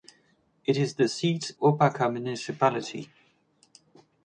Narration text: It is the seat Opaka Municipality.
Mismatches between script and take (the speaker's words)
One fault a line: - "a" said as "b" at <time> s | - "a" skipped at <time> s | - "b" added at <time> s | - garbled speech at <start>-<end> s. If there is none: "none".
none